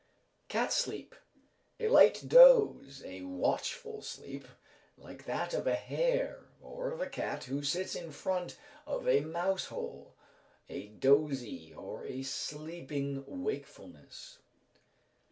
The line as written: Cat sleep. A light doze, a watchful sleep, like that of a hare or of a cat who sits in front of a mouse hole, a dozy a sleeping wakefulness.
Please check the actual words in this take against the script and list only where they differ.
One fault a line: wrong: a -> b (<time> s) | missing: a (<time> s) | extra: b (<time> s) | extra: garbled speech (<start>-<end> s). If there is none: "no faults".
extra: or (11.7 s)